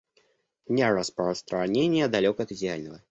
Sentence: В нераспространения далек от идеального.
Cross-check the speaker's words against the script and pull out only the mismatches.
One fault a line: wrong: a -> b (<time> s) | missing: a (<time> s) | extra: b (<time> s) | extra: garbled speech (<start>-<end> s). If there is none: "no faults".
no faults